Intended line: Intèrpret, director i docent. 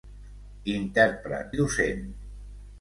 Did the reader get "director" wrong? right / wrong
wrong